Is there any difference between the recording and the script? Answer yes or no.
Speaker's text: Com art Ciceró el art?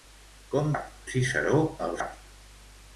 no